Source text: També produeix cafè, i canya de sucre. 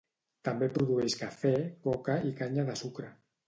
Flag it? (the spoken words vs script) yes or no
yes